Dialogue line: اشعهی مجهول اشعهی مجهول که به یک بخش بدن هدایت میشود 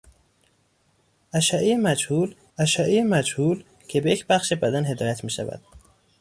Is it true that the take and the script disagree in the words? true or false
false